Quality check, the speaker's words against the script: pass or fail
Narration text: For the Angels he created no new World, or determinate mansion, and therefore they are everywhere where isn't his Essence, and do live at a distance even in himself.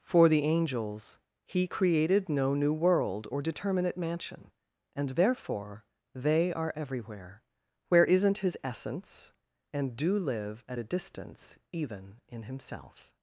pass